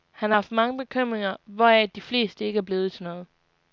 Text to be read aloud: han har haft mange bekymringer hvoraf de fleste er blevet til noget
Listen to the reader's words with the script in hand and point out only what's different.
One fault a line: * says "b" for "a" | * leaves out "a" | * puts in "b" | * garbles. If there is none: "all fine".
* puts in "ikke"